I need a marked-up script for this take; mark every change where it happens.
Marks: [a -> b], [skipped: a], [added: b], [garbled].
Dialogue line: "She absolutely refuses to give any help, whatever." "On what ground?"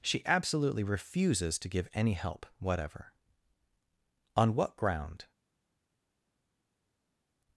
"She absolutely refuses to give any help, whatever." "On what ground?"